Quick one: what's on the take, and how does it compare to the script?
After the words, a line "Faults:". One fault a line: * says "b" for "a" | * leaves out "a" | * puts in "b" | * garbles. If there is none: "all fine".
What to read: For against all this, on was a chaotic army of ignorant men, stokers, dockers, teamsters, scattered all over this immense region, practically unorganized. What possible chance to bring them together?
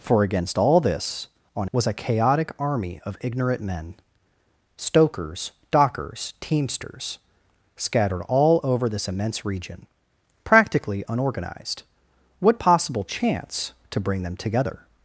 For against all this, on was a chaotic army of ignorant men, stokers, dockers, teamsters, scattered all over this immense region, practically unorganized. What possible chance to bring them together?
Faults:
all fine